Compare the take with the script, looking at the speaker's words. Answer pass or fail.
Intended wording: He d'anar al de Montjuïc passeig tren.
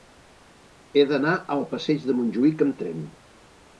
fail